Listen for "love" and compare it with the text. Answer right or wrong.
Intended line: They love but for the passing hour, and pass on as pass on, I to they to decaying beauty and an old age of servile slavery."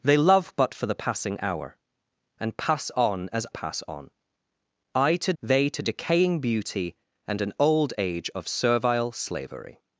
right